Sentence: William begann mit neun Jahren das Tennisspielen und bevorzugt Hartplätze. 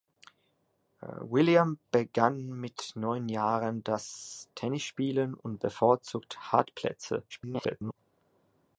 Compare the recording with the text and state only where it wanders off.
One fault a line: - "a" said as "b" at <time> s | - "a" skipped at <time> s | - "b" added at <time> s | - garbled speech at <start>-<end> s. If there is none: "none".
- garbled speech at 7.3-7.9 s